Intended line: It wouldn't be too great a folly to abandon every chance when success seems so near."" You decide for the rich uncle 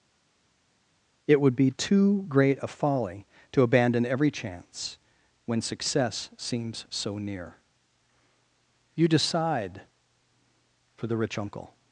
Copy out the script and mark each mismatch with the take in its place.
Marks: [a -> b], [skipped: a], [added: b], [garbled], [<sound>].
It [wouldn't -> would] be too great a folly to abandon every chance when success seems so near."" You decide for the rich uncle